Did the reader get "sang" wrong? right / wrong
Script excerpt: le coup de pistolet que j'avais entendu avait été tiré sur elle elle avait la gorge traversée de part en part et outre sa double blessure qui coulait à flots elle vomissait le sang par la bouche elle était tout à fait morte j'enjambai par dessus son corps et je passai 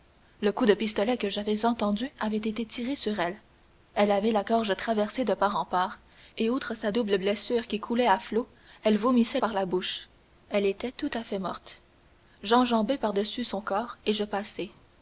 wrong